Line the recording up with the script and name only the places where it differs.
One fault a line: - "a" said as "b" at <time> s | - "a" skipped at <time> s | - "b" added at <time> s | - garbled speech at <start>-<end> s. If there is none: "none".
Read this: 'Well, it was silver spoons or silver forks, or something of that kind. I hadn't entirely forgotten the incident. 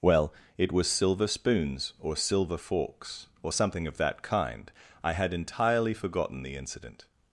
- "hadn't" said as "had" at 5.1 s